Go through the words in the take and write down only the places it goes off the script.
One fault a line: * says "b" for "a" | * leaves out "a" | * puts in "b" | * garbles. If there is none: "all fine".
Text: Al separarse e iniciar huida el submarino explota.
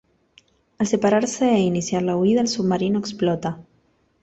* puts in "la"